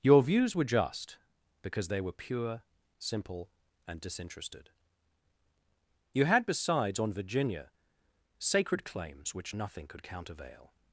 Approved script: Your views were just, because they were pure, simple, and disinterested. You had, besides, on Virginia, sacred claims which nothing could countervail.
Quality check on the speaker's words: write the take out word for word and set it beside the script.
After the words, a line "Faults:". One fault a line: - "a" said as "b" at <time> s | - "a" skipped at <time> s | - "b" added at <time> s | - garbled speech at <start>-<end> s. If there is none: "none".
Your views were just, because they were pure, simple, and disinterested. You had, besides, on Virginia, sacred claims which nothing could countervail.
Faults:
none